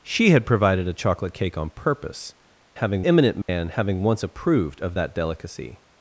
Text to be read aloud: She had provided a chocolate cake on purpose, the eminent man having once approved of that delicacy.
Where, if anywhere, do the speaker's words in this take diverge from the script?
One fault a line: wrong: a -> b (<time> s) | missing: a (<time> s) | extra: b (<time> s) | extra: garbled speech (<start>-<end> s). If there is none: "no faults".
wrong: the -> having (2.7 s)